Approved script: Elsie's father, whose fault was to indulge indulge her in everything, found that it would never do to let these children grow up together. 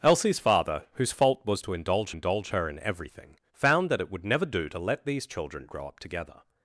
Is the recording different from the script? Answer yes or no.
no